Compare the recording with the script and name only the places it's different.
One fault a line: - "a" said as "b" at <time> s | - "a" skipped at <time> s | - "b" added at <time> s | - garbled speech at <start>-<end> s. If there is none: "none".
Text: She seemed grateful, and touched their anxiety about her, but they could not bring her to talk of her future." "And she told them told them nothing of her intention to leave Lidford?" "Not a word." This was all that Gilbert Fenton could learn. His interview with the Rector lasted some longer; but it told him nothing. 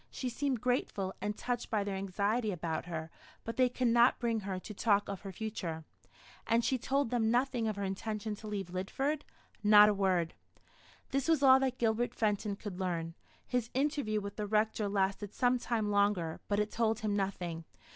- "by" added at 1.7 s
- "told them" skipped at 7.3 s
- "time" added at 15.6 s